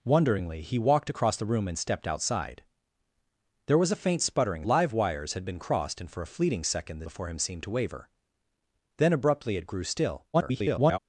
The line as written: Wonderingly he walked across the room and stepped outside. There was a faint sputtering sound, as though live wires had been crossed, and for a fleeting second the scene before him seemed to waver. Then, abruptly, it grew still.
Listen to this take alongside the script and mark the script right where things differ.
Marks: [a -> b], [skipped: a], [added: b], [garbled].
Wonderingly he walked across the room and stepped outside. There was a faint sputtering [skipped: sound, as though] live wires had been crossed, and for a fleeting second the [skipped: scene] before him seemed to waver. Then, abruptly, it grew still. [garbled]